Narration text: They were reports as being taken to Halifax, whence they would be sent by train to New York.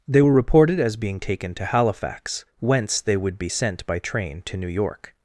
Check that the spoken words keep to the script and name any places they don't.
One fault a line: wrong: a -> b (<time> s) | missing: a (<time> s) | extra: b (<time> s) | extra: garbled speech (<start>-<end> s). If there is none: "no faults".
wrong: reports -> reported (0.3 s)